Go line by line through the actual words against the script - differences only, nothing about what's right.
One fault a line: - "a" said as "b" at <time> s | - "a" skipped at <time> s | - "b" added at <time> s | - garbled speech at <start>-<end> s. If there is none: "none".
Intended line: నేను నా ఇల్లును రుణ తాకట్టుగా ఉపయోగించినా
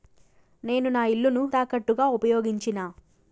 - "రుణ" skipped at 1.4 s